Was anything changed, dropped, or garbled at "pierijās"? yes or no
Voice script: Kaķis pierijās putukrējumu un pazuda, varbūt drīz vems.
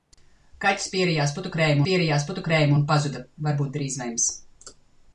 no